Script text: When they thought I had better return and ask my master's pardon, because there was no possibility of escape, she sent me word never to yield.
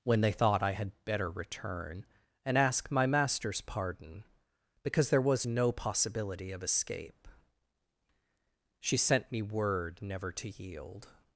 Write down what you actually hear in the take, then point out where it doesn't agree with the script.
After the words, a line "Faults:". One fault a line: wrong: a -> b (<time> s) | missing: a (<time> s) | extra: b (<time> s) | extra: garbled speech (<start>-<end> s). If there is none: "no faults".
When they thought I had better return and ask my master's pardon, because there was no possibility of escape, she sent me word never to yield.
Faults:
no faults